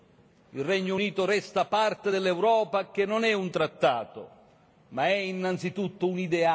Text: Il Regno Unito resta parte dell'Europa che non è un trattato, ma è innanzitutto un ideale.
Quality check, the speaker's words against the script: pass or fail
pass